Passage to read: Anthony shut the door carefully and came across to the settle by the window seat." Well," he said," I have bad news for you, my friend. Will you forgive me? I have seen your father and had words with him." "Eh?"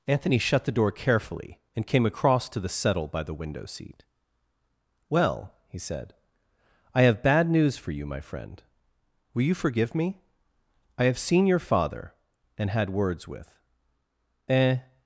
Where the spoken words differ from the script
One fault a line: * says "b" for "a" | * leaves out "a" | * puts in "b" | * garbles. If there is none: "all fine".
* leaves out "him"